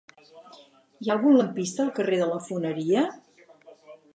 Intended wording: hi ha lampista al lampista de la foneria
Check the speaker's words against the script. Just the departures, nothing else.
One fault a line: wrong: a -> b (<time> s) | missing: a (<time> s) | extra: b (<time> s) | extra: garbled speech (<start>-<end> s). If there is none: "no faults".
extra: algun (1.1 s)
wrong: lampista -> carrer (2.0 s)